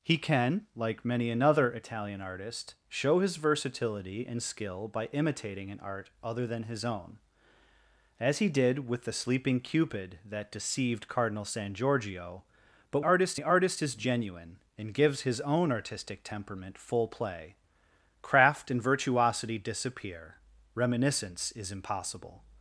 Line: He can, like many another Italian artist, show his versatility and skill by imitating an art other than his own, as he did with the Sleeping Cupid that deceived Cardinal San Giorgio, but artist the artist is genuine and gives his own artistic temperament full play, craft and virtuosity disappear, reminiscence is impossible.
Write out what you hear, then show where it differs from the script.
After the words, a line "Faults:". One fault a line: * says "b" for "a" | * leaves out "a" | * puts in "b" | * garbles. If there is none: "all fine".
He can, like many another Italian artist, show his versatility and skill by imitating an art other than his own, as he did with the Sleeping Cupid that deceived Cardinal San Giorgio, but artist the artist is genuine and gives his own artistic temperament full play, craft and virtuosity disappear, reminiscence is impossible.
Faults:
all fine